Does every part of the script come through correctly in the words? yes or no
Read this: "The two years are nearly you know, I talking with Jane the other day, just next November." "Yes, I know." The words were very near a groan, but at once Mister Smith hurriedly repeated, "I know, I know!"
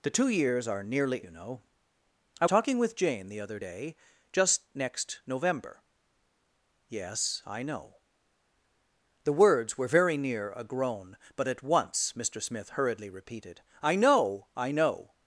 yes